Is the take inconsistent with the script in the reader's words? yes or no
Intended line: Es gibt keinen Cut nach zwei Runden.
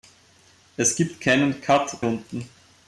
yes